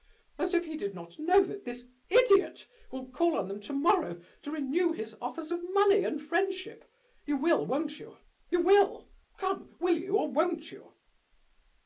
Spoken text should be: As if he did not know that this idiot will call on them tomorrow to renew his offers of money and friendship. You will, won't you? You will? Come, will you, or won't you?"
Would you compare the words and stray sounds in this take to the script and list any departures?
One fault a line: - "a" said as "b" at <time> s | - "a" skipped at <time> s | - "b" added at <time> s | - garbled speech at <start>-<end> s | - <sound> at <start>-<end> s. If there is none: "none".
none